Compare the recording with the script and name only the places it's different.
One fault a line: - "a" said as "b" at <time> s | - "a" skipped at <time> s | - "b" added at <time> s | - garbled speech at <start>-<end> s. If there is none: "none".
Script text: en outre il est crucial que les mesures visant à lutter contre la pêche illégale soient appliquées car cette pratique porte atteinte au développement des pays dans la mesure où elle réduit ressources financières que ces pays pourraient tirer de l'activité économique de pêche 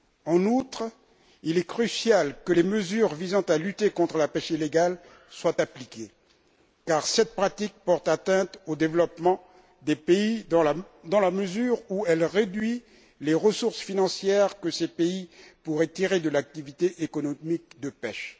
- "les" added at 13.2 s